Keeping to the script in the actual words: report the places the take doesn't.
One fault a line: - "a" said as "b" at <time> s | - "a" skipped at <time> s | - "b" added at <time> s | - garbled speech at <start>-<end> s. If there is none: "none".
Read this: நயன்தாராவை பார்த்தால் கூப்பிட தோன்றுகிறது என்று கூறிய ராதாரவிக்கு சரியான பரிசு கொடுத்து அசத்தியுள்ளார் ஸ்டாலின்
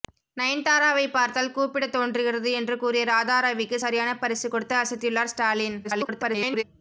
- garbled speech at 5.8-6.6 s